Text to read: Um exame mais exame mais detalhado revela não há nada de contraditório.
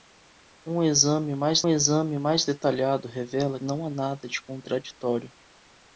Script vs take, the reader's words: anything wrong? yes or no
no